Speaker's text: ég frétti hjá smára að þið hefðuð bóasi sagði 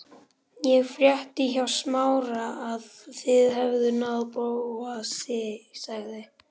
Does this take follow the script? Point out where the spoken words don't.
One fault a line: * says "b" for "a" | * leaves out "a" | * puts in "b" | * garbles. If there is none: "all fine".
* puts in "náð"